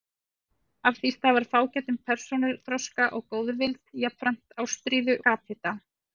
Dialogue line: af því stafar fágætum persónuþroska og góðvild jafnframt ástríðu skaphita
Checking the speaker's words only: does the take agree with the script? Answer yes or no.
yes